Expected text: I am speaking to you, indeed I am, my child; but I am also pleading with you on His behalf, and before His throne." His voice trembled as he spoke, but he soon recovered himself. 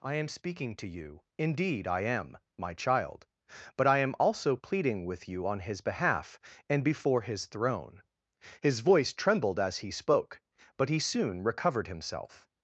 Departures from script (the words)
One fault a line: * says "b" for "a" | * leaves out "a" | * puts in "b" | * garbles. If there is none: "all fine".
all fine